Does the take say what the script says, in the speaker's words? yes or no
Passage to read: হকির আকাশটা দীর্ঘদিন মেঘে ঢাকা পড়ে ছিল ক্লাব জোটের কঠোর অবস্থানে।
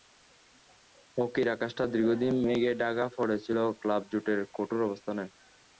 yes